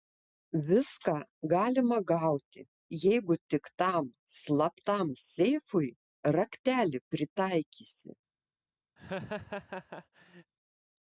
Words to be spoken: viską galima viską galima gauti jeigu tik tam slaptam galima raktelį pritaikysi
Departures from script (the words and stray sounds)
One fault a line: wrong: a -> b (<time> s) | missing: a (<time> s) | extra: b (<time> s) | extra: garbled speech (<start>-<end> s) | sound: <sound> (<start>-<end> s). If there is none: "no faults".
missing: viską galima (2.0 s)
wrong: galima -> seifui (5.3 s)
sound: laugh (9.0-10.5 s)